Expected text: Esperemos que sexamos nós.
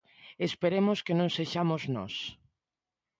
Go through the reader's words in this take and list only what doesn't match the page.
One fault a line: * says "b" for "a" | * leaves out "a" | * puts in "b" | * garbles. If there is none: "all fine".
* puts in "non"